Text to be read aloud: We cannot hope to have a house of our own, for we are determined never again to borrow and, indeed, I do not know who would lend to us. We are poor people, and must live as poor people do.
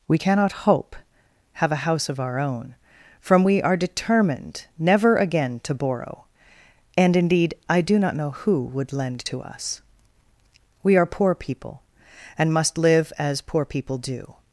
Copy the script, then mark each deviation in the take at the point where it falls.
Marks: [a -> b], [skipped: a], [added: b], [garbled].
We cannot hope [skipped: to] have a house of our own, [for -> from] we are determined never again to borrow and, indeed, I do not know who would lend to us. We are poor people, and must live as poor people do.